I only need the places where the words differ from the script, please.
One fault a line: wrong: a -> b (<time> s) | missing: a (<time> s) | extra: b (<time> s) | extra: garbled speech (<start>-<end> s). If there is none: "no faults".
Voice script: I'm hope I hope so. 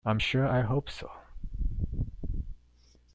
wrong: hope -> sure (0.2 s)